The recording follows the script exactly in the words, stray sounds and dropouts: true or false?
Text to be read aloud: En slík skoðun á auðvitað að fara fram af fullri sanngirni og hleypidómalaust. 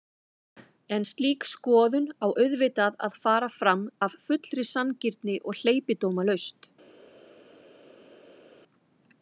true